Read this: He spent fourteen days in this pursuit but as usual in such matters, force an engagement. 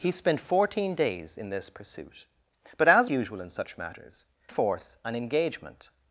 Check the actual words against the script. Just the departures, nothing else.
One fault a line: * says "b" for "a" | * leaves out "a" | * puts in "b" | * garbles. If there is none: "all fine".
all fine